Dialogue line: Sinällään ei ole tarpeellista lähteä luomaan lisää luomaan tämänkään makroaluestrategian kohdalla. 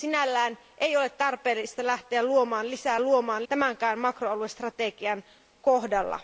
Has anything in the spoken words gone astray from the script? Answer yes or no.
no